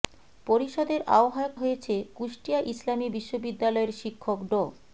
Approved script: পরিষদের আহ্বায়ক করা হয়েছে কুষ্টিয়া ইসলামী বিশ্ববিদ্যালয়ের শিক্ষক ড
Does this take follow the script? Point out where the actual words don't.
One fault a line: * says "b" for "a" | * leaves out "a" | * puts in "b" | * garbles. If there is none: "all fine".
* leaves out "করা"